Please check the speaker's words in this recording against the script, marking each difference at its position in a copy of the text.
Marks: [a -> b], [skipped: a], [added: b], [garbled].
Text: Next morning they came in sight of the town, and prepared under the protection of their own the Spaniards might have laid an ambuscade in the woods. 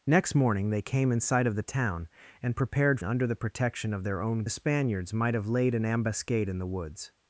Next morning they came in sight of the town, and prepared under the protection of their own the Spaniards might have laid an ambuscade in the woods.